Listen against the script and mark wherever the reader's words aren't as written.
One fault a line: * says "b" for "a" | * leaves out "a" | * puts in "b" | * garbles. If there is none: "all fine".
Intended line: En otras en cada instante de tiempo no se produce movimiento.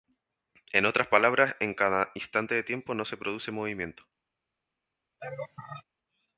* puts in "palabras"